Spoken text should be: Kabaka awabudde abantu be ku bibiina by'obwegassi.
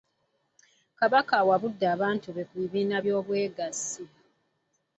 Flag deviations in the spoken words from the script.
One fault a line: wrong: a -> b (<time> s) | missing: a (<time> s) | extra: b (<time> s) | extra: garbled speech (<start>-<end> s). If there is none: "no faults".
no faults